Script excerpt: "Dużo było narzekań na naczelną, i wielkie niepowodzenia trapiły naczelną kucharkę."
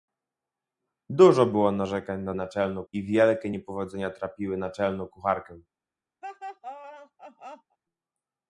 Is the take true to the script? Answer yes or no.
yes